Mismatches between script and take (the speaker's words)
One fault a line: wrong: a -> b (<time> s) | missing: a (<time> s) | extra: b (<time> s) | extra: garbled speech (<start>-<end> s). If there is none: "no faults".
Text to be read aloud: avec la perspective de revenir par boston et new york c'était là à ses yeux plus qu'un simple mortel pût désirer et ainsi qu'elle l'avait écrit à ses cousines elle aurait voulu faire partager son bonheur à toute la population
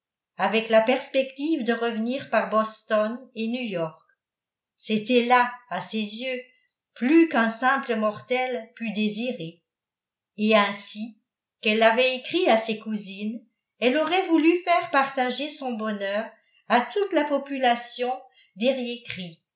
no faults